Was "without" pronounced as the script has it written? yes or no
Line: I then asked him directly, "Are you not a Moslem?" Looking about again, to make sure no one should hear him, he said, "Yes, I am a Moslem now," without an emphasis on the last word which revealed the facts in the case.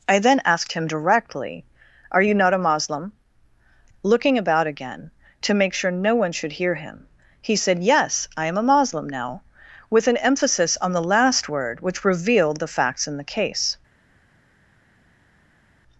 no